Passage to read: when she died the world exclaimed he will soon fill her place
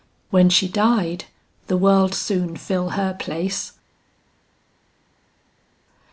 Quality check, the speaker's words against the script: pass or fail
fail